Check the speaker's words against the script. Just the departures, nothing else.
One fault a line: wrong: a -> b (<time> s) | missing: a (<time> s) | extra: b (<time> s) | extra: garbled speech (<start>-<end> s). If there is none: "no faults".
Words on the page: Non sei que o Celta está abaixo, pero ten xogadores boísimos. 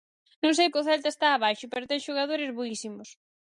no faults